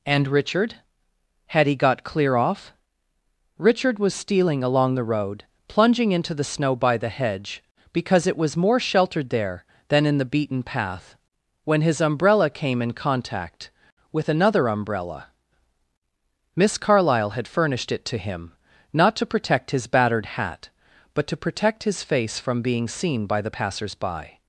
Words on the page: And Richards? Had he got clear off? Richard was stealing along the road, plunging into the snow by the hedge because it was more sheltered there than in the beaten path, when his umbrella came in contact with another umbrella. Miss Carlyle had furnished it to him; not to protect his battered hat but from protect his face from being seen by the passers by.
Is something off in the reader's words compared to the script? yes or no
yes